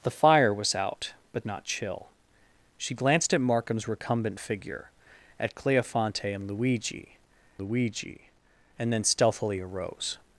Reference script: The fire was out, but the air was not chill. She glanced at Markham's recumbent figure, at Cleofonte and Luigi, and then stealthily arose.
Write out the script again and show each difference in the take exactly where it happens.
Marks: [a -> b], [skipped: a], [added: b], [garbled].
The fire was out, but [skipped: the air was] not chill. She glanced at Markham's recumbent figure, at Cleofonte and Luigi, [added: Luigi] and then stealthily arose.